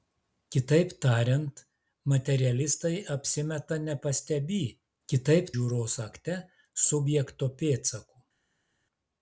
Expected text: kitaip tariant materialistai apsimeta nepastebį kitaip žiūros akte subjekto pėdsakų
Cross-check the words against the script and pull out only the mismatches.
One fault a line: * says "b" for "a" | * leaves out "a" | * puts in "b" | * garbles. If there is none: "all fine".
all fine